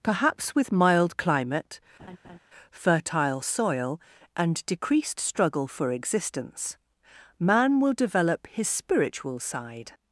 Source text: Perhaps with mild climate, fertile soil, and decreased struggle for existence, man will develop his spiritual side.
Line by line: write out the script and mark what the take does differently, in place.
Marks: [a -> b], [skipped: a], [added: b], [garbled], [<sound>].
Perhaps with mild climate, [laugh] fertile soil, and decreased struggle for existence, man will develop his spiritual side.